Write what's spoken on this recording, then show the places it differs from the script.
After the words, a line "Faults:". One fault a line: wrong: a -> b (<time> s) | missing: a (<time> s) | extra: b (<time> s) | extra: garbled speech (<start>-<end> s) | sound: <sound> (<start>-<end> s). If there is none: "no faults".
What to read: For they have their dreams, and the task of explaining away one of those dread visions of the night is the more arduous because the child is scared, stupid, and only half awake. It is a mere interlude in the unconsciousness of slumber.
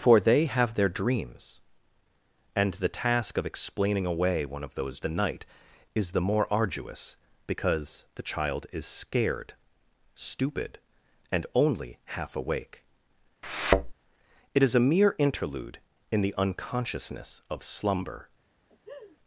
For they have their dreams, and the task of explaining away one of those the night is the more arduous because the child is scared, stupid, and only half awake. It is a mere interlude in the unconsciousness of slumber.
Faults:
missing: dread visions of (5.0 s)
sound: thud (13.4-13.9 s)
sound: laugh (18.7-19.2 s)